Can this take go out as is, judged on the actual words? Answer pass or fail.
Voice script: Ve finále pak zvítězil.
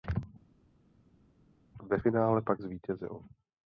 pass